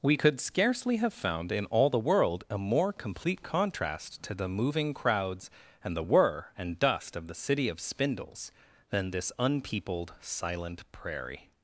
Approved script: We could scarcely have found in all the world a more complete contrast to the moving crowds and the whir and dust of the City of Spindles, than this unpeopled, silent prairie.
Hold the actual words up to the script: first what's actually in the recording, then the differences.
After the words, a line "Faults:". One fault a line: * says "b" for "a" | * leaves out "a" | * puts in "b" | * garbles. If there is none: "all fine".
We could scarcely have found in all the world a more complete contrast to the moving crowds and the whir and dust of the City of Spindles, than this unpeopled, silent prairie.
Faults:
all fine